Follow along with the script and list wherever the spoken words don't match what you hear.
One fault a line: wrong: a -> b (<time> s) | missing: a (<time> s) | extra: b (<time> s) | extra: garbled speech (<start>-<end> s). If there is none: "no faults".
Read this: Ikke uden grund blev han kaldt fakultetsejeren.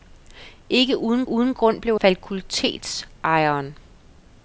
extra: uden (1.3 s)
missing: han kaldt (2.0 s)